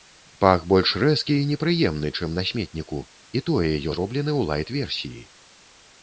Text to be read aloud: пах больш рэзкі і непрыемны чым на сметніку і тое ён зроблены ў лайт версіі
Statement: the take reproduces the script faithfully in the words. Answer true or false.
false